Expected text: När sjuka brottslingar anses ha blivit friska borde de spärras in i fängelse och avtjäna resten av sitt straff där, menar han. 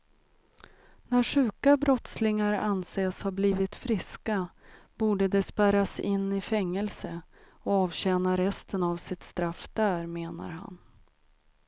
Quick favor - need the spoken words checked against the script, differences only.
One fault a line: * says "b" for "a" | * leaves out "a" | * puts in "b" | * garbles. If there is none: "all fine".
all fine